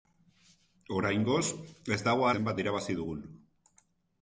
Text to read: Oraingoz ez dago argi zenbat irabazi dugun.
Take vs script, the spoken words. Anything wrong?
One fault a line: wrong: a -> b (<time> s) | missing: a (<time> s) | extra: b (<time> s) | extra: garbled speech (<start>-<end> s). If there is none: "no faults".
missing: argi (2.3 s)